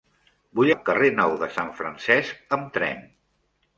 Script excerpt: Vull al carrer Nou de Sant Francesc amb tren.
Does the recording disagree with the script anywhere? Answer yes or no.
no